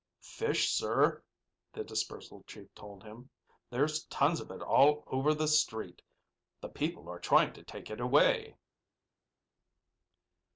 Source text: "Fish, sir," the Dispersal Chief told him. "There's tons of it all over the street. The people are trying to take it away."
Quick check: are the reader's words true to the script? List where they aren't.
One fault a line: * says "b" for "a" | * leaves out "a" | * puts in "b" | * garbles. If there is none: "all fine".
all fine